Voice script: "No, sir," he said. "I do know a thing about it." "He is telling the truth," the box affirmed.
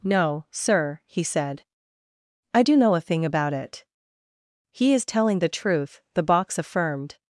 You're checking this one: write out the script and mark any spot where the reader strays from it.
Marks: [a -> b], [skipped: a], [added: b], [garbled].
"No, sir," he said. "I do know a thing about it." "He is telling the truth," the box affirmed.